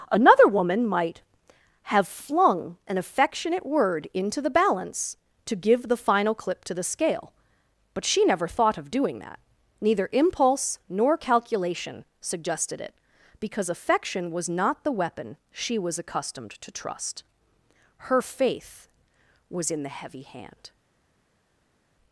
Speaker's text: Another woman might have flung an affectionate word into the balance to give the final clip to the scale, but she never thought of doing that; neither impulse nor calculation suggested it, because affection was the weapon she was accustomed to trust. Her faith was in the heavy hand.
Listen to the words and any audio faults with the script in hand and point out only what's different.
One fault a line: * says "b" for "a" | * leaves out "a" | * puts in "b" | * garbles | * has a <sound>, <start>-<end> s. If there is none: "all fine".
* puts in "not"